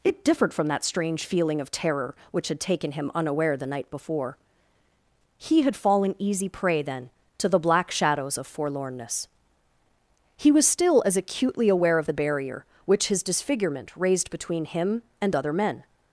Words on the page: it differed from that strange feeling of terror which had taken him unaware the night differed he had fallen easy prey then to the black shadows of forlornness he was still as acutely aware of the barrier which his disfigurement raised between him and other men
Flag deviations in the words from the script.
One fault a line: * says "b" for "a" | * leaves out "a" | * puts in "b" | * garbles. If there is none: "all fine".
* says "before" for "differed"